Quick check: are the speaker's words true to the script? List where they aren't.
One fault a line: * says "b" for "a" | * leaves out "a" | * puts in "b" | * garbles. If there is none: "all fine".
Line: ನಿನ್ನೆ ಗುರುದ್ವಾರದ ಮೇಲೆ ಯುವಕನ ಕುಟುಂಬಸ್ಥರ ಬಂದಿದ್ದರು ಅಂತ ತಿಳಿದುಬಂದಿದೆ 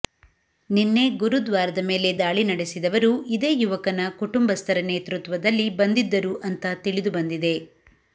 * puts in "ದಾಳಿ ನಡೆಸಿದವರು ಇದೇ"
* puts in "ನೇತೃತ್ವದಲ್ಲಿ"